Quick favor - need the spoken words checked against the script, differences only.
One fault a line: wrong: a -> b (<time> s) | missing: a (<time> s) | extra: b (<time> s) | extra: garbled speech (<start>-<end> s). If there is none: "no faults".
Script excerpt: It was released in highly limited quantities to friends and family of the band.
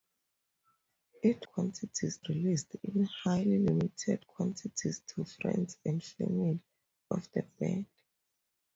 wrong: was -> quantities (1.4 s)